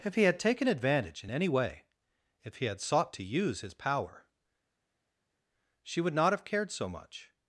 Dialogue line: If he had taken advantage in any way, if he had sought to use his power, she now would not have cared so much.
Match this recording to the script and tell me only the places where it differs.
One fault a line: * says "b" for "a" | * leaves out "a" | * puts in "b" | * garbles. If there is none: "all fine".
* leaves out "now"